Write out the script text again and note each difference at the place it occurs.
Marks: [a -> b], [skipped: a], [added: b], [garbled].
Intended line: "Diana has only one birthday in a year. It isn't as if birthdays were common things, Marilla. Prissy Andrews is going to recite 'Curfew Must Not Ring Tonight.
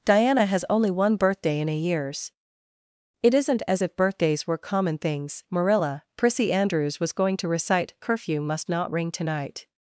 "Diana has only one birthday in a [year. -> years] It isn't as if birthdays were common things, Marilla. Prissy Andrews [is -> was] going to recite 'Curfew Must Not Ring Tonight.